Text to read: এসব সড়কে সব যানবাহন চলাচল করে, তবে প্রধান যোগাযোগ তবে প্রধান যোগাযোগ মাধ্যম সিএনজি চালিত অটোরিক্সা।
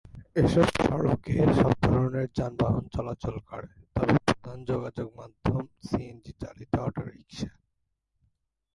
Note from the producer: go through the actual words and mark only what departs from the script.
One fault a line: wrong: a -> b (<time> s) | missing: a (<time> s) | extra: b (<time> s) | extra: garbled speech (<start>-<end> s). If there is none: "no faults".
extra: ধরনের (1.9 s)
missing: তবে প্রধান যোগাযোগ (5.1 s)